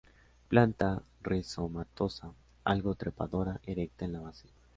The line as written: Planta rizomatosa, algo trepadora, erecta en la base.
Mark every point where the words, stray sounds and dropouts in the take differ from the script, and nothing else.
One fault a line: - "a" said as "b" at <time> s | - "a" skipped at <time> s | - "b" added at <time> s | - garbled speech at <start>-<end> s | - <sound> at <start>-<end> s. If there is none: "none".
none